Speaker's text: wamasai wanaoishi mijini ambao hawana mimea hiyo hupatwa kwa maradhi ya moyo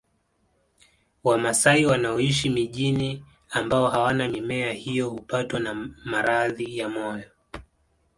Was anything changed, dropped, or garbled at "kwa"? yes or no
yes